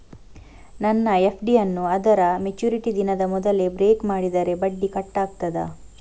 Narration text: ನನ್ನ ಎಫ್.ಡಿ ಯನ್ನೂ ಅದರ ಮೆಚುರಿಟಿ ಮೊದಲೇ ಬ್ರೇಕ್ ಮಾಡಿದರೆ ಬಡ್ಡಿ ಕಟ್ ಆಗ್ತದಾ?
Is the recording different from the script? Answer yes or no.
yes